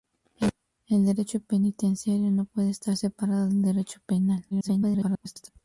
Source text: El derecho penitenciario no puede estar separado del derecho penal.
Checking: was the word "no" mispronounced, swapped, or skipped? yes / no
no